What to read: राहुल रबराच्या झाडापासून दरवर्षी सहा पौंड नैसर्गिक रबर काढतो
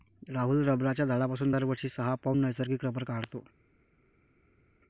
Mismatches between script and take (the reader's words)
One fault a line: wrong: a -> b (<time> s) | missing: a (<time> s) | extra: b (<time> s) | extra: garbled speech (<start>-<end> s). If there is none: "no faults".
no faults